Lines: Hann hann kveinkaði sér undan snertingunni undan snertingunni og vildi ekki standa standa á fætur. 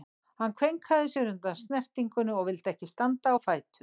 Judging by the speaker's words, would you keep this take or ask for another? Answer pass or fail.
fail